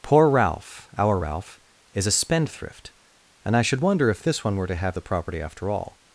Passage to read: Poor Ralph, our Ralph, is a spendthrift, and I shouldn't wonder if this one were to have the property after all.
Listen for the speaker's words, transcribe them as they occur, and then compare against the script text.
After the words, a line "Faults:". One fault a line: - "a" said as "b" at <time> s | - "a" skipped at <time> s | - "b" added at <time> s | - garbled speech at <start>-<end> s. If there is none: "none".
Poor Ralph, our Ralph, is a spendthrift, and I should wonder if this one were to have the property after all.
Faults:
- "shouldn't" said as "should" at 3.6 s